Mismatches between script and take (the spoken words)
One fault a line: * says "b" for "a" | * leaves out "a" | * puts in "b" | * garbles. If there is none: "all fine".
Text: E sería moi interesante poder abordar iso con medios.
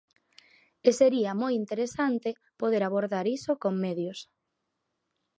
all fine